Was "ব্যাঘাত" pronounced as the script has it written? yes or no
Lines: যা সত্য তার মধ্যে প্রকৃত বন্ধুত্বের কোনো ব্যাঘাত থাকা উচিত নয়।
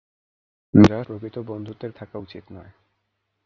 no